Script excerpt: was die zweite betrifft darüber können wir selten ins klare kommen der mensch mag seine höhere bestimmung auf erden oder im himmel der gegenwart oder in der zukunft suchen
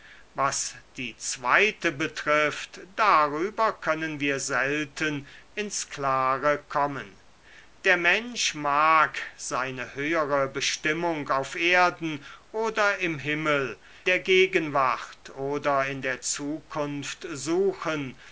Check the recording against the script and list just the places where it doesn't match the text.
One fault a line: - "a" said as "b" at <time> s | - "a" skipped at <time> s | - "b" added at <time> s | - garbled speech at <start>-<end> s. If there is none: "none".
none